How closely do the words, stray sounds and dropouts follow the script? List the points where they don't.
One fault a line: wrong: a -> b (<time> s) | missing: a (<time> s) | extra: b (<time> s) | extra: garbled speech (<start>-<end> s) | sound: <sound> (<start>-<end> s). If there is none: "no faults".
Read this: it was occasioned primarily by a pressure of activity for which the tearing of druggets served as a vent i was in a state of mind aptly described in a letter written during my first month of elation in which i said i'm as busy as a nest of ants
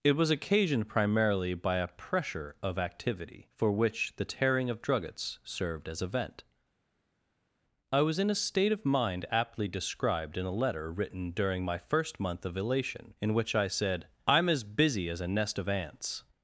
no faults